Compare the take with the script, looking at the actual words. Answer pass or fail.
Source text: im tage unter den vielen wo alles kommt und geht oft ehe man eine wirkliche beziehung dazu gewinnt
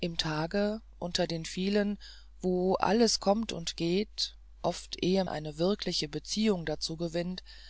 fail